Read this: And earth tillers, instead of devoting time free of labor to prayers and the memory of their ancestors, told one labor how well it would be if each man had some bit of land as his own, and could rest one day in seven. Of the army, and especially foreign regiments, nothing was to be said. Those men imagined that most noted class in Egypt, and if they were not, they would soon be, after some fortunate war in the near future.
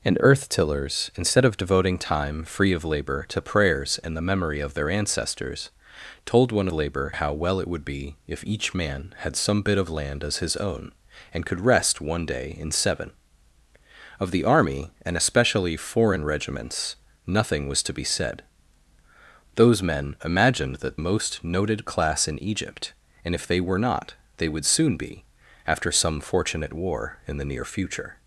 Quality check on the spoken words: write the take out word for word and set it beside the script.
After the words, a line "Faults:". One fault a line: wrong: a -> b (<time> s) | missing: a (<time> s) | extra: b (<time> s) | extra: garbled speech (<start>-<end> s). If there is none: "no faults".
And earth tillers, instead of devoting time free of labor to prayers and the memory of their ancestors, told one labor how well it would be if each man had some bit of land as his own, and could rest one day in seven. Of the army, and especially foreign regiments, nothing was to be said. Those men imagined that most noted class in Egypt, and if they were not, they would soon be, after some fortunate war in the near future.
Faults:
no faults